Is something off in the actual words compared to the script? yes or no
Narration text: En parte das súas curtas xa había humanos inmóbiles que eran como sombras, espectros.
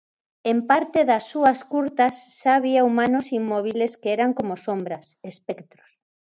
no